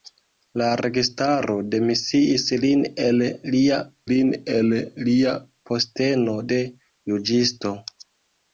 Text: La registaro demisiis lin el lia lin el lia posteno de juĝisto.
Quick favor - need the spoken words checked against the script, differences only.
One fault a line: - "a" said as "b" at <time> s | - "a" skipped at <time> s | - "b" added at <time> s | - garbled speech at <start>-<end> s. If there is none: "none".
none